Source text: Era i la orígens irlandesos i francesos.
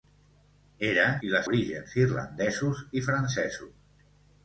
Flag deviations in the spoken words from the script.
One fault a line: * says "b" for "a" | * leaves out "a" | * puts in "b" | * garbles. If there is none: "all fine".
all fine